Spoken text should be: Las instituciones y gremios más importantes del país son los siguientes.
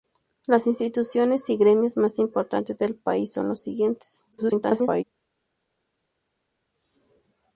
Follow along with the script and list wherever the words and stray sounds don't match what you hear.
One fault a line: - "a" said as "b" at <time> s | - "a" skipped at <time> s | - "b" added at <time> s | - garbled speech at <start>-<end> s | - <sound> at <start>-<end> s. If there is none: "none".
- garbled speech at 4.3-5.0 s